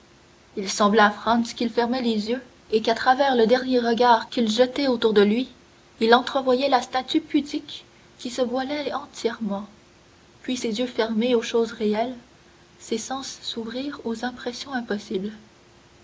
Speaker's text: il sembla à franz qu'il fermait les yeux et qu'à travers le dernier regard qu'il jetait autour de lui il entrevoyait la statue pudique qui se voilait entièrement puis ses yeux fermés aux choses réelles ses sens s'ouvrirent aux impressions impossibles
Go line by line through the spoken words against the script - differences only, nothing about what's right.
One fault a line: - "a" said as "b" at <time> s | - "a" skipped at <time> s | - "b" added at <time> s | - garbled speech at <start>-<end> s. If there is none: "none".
none